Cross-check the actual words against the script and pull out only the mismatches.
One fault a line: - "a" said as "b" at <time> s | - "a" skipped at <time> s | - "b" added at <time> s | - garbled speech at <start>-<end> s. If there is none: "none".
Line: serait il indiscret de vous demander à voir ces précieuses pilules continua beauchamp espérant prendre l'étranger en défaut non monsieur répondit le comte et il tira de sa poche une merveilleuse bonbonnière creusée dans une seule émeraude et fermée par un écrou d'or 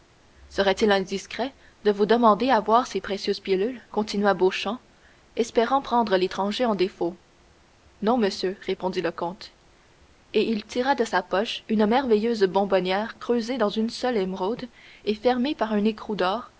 none